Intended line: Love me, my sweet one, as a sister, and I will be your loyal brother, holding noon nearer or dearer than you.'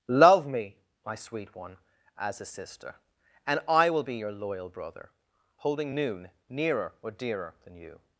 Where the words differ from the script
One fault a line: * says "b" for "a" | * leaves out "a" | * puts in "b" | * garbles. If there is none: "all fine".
all fine